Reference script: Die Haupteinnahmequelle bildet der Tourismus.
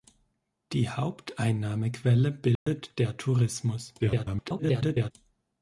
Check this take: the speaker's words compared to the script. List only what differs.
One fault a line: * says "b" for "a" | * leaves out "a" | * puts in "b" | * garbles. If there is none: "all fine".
* garbles